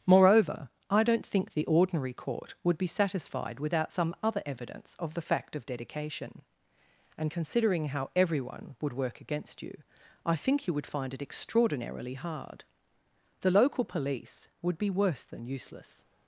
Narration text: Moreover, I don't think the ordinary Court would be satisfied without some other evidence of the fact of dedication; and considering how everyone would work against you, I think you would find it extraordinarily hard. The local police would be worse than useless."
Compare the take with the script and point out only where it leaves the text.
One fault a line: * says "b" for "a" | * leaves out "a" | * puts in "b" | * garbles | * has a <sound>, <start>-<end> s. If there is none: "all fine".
all fine